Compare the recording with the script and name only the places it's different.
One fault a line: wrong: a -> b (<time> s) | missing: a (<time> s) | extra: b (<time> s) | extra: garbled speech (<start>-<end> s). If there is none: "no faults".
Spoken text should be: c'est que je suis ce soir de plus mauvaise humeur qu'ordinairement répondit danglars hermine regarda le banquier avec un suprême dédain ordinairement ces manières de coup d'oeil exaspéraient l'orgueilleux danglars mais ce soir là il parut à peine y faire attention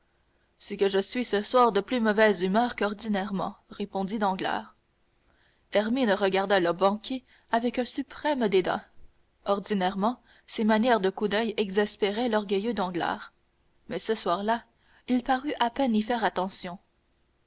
no faults